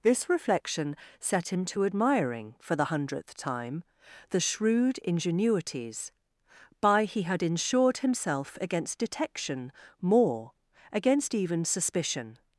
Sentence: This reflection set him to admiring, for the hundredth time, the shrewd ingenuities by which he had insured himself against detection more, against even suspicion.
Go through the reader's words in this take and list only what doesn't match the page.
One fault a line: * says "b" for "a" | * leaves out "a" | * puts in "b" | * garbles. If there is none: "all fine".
* leaves out "which"